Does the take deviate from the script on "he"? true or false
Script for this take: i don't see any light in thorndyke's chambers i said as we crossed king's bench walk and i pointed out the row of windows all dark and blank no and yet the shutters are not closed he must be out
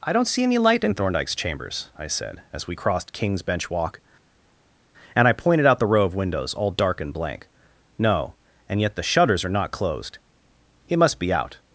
true